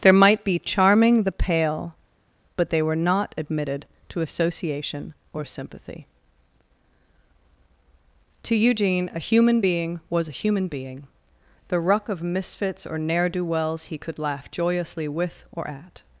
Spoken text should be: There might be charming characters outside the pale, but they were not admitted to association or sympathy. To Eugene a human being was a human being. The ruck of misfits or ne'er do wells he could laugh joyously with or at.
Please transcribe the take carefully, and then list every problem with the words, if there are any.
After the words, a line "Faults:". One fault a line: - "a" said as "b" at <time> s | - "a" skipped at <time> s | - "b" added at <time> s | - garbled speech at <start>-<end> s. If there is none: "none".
There might be charming the pale, but they were not admitted to association or sympathy. To Eugene a human being was a human being. The ruck of misfits or ne'er do wells he could laugh joyously with or at.
Faults:
- "characters outside" skipped at 1.2 s